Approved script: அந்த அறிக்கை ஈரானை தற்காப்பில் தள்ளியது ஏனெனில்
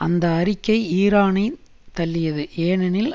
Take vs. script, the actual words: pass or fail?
fail